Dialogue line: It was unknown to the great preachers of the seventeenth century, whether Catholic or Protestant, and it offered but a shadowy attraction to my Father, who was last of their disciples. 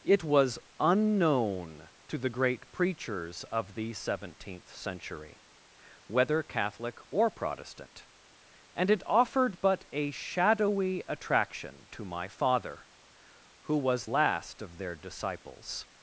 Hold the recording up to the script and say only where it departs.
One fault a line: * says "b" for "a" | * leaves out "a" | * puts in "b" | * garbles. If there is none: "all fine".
all fine